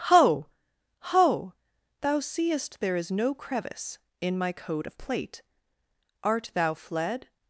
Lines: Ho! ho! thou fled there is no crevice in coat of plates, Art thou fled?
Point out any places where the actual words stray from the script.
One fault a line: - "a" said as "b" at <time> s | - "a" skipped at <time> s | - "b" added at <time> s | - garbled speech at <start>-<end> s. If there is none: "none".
- "fled" said as "seest" at 2.2 s
- "my" added at 4.3 s
- "plates" said as "plate" at 5.0 s